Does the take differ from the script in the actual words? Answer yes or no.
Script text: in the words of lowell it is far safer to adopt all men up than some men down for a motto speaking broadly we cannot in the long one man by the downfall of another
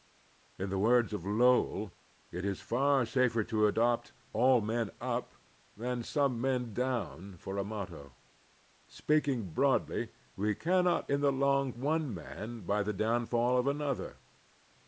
no